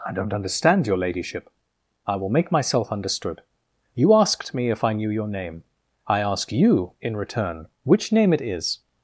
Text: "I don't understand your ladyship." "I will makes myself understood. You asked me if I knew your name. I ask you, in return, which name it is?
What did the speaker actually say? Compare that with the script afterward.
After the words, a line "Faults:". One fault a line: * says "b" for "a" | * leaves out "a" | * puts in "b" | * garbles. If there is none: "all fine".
"I don't understand your ladyship." "I will make myself understood. You asked me if I knew your name. I ask you, in return, which name it is?
Faults:
* says "make" for "makes"